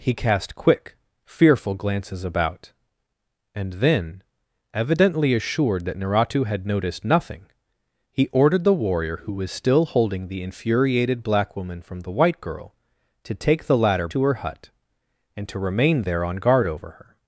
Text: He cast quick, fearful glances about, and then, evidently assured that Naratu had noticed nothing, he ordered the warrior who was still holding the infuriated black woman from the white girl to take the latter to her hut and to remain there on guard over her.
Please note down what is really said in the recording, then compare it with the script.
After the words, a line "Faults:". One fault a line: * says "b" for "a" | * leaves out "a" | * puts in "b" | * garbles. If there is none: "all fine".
He cast quick, fearful glances about, and then, evidently assured that Naratu had noticed nothing, he ordered the warrior who was still holding the infuriated black woman from the white girl to take the latter to her hut and to remain there on guard over her.
Faults:
all fine